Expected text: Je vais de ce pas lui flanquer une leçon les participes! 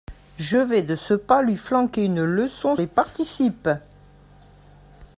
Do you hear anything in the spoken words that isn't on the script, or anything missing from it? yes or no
no